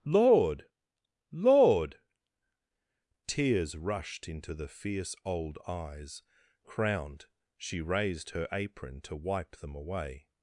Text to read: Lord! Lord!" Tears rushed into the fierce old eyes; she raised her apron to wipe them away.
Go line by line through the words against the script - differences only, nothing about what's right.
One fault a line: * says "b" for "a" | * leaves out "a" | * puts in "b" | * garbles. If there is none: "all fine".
* puts in "crowned"